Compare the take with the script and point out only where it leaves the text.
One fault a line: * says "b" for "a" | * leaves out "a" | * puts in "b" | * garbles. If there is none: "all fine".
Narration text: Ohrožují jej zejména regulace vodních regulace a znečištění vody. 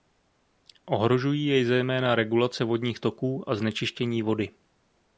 * says "toků" for "regulace"